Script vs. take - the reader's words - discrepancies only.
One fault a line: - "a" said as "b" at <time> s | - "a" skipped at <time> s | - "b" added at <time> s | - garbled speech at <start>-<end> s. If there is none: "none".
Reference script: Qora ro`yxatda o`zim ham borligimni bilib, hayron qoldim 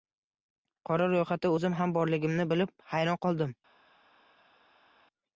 none